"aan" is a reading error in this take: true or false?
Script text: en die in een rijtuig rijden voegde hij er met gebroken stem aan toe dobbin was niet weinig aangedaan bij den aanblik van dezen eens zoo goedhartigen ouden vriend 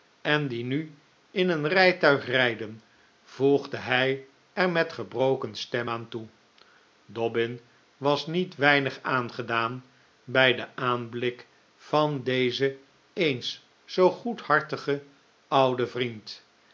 false